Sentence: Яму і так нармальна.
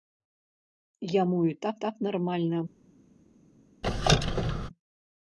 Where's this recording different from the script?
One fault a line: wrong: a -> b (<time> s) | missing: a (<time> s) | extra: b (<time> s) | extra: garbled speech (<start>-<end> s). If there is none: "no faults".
extra: так (1.8 s)